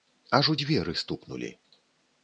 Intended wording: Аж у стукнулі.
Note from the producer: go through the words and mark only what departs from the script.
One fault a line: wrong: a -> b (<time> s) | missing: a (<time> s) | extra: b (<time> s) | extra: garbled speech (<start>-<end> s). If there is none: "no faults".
extra: дзверы (0.6 s)